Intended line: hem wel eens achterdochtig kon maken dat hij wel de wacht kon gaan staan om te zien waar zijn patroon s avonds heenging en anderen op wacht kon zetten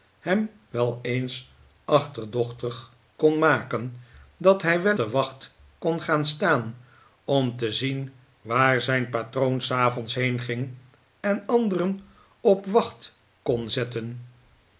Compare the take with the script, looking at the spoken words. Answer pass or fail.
pass